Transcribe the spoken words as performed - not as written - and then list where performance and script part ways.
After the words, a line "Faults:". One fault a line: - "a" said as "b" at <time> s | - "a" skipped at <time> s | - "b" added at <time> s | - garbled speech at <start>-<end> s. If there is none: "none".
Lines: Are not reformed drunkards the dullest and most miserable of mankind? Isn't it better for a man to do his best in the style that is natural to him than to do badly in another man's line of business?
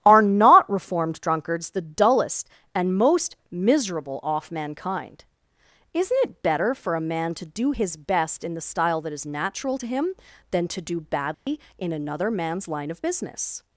Are not reformed drunkards the dullest and most miserable off mankind? Isn't it better for a man to do his best in the style that is natural to him than to do badly in another man's line of business?
Faults:
- "of" said as "off" at 4.2 s